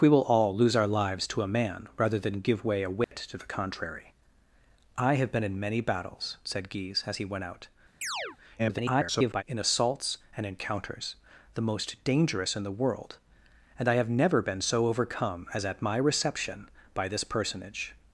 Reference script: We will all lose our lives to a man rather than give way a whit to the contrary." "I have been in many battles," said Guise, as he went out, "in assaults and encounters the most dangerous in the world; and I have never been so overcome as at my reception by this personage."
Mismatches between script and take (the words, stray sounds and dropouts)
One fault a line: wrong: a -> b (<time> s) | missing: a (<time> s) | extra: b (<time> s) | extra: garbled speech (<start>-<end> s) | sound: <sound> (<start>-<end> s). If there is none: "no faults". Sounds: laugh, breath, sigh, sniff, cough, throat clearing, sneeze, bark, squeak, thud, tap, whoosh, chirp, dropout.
sound: dropout (3.0-3.1 s)
sound: chirp (8.0-8.4 s)
extra: garbled speech (8.6-9.4 s)